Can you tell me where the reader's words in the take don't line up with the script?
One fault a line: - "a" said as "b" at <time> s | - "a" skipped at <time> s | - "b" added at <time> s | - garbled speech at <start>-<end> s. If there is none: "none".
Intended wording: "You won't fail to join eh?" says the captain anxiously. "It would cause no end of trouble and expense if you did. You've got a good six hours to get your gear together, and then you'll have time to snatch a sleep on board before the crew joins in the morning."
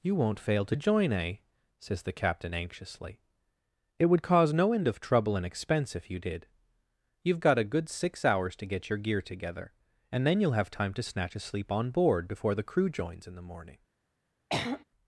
none